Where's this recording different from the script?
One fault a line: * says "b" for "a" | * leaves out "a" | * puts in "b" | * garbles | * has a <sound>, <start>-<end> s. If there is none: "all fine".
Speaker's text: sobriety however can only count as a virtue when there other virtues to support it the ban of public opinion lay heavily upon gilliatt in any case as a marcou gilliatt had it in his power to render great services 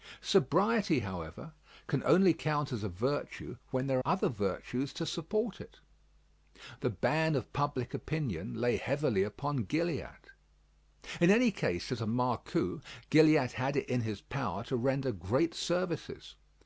all fine